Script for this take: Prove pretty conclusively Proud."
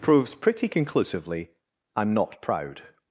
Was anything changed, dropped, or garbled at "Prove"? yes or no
yes